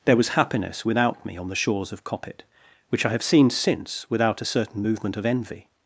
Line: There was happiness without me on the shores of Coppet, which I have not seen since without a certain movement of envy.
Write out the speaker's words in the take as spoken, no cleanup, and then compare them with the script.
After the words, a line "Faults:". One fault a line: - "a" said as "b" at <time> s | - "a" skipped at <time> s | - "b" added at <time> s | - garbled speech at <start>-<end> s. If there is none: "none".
There was happiness without me on the shores of Coppet, which I have seen since without a certain movement of envy.
Faults:
- "not" skipped at 3.2 s